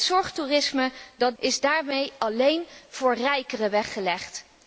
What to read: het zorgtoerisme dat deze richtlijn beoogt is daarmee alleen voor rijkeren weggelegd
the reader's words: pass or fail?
fail